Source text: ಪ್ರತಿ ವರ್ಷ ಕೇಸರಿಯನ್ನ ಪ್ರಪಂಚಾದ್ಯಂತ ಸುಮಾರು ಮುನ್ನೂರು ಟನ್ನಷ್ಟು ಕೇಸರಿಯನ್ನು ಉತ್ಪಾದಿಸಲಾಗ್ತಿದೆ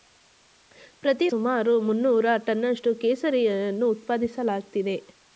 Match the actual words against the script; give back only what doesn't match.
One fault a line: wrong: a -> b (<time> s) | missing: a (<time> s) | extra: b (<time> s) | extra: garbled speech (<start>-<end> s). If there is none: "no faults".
missing: ವರ್ಷ ಕೇಸರಿಯನ್ನ ಪ್ರಪಂಚಾದ್ಯಂತ (1.3 s)